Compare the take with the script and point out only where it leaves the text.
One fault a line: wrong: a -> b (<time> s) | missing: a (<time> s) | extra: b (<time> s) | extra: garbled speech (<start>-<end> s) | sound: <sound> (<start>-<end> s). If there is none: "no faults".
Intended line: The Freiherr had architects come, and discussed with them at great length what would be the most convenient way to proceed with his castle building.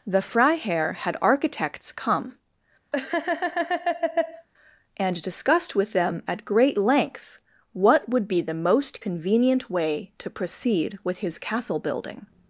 sound: laugh (2.9-4.5 s)